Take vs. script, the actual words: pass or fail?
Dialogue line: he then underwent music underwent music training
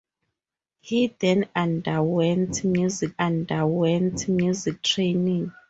pass